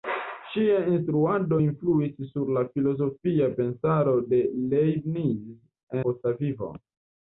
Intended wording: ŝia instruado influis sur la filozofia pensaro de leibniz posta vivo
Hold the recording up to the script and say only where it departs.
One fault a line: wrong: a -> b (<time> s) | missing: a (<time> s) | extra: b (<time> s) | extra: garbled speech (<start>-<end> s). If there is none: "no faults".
no faults